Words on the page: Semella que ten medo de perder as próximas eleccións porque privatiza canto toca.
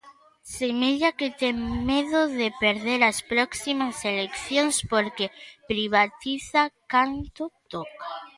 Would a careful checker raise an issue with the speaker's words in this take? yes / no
no